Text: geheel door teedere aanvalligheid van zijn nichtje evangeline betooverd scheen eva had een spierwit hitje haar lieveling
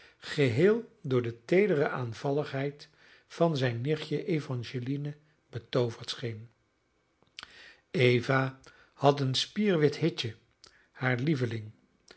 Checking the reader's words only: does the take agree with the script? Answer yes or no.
no